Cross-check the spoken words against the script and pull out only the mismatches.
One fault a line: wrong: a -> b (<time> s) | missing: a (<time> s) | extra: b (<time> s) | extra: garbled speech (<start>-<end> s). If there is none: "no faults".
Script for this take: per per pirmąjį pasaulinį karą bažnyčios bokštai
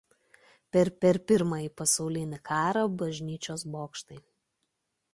no faults